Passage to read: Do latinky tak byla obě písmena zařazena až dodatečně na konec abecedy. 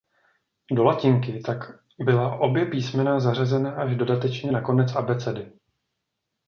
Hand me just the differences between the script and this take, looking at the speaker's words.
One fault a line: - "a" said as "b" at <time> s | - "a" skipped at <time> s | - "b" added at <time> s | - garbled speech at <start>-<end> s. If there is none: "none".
none